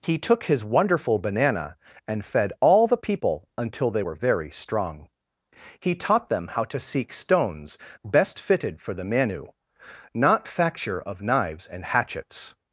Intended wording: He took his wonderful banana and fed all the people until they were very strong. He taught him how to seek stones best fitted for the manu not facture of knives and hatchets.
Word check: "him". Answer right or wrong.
wrong